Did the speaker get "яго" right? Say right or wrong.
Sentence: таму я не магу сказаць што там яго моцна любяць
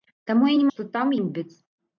wrong